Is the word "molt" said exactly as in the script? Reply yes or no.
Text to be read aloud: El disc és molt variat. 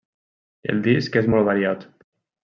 yes